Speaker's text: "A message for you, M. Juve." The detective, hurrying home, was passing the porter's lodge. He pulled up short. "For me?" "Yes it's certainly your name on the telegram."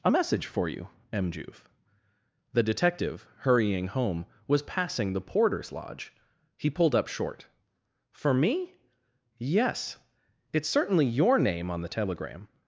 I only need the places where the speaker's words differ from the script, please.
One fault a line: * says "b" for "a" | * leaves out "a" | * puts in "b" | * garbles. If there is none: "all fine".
all fine